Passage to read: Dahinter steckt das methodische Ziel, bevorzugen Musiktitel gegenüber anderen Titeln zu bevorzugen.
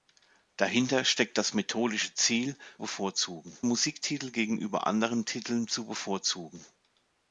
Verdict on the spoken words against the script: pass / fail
pass